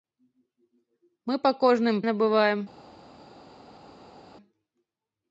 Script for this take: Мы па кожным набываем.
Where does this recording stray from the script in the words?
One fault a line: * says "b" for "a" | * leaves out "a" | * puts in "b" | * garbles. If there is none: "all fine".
all fine